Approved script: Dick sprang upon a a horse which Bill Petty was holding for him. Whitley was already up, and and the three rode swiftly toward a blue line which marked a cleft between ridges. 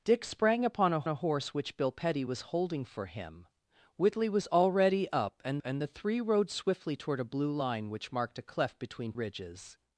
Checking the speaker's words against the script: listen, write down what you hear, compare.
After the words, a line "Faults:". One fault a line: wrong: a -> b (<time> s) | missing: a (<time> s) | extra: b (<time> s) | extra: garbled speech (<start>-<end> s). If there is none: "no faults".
Dick sprang upon a a horse which Bill Petty was holding for him. Whitley was already up, and and the three rode swiftly toward a blue line which marked a cleft between ridges.
Faults:
no faults